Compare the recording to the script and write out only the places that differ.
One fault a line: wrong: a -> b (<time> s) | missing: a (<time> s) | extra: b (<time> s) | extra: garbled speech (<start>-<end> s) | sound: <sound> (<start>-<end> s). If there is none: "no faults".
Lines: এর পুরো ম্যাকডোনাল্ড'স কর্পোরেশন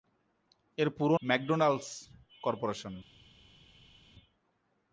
no faults